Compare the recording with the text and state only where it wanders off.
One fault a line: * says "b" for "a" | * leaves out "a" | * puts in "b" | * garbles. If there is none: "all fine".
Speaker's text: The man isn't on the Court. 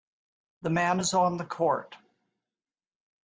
* says "is" for "isn't"